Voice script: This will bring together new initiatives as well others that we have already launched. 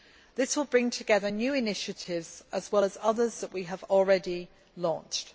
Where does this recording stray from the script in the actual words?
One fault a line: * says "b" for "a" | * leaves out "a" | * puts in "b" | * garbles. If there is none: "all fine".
* puts in "as"